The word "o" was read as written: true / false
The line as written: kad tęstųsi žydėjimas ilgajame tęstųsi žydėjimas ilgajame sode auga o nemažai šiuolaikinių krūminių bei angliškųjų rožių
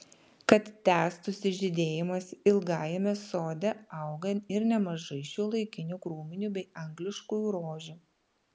false